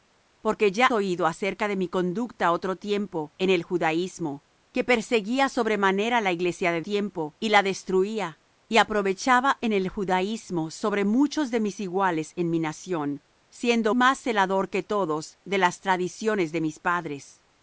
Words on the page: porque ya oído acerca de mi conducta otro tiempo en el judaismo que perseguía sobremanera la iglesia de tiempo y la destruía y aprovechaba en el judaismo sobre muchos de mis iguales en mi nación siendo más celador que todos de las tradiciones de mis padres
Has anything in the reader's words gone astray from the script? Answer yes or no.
no